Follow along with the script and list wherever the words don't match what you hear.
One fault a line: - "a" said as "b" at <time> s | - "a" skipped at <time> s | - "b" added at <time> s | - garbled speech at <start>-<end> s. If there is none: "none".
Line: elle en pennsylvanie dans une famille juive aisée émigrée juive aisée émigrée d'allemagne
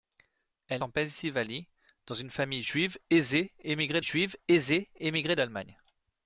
none